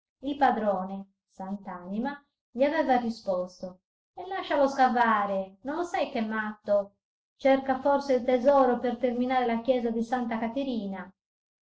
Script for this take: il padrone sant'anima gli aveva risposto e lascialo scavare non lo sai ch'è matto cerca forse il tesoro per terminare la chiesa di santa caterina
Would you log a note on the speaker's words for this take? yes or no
no